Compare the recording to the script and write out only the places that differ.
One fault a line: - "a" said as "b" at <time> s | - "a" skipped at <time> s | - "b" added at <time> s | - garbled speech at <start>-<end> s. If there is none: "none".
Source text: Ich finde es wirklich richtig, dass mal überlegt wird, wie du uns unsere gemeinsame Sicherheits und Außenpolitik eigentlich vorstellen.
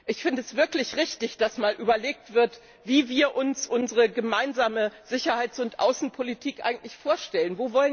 - "du" said as "wir" at 3.1 s